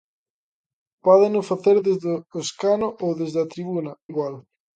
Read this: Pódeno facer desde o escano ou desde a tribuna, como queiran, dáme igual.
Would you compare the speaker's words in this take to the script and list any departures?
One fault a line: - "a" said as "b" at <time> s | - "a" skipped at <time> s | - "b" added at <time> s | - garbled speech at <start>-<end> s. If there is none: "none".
- "como queiran dáme" skipped at 3.9 s